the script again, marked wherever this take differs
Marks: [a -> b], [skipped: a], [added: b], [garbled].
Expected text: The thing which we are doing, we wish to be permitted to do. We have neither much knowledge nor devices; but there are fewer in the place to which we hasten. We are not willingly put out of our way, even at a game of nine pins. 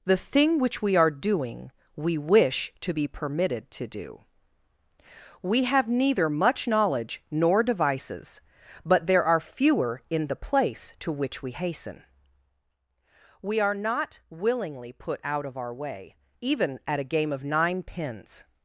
The thing which we are doing, we wish to be permitted to do. We have neither much knowledge nor devices; but there are fewer in the place to which we hasten. We are not willingly put out of our way, even at a game of nine pins.